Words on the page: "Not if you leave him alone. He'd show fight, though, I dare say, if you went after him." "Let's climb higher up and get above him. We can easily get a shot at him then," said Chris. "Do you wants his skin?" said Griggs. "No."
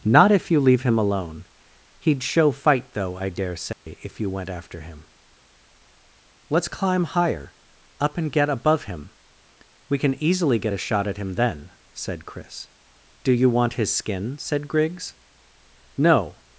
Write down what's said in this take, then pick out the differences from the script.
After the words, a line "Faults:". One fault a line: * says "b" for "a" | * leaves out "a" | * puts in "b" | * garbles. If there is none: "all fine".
"Not if you leave him alone. He'd show fight, though, I dare say, if you went after him." "Let's climb higher up and get above him. We can easily get a shot at him then," said Chris. "Do you want his skin?" said Griggs. "No."
Faults:
* says "want" for "wants"